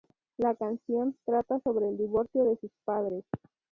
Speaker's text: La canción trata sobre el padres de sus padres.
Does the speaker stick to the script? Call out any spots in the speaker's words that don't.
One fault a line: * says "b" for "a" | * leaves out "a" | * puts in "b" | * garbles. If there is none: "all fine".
* says "divorcio" for "padres"